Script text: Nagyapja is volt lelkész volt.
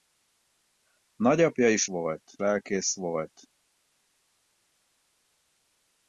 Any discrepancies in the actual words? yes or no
no